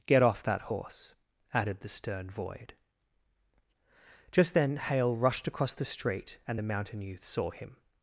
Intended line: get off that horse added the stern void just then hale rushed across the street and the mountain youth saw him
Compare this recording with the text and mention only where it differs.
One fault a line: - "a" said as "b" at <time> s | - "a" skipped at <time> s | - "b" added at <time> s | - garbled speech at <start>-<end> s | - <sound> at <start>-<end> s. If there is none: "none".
none